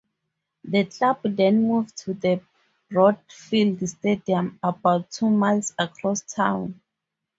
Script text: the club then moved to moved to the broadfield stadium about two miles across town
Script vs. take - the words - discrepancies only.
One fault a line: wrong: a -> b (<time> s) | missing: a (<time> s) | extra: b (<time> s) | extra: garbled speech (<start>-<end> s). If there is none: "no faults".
missing: moved to (2.1 s)